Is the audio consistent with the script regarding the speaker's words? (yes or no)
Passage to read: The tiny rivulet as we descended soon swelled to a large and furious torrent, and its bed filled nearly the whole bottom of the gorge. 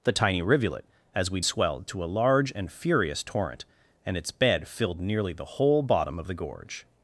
no